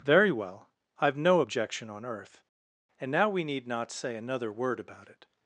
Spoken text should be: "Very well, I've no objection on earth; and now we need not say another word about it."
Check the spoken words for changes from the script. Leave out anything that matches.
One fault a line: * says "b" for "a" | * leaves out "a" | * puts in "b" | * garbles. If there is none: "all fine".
all fine